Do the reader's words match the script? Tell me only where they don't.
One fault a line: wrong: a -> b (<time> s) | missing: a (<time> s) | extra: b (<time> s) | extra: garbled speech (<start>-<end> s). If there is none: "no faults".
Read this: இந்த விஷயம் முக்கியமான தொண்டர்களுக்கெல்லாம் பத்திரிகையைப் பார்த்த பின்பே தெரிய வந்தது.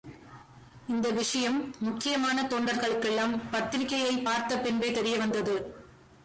no faults